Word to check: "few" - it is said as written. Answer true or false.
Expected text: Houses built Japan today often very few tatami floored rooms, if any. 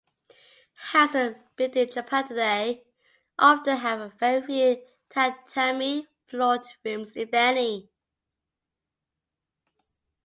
true